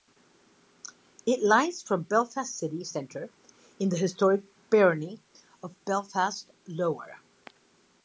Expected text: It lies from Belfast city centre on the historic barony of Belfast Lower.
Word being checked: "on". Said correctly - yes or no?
no